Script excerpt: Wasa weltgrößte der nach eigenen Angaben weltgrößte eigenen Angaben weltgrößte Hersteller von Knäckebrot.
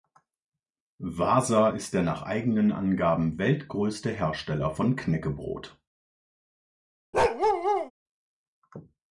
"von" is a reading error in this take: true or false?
false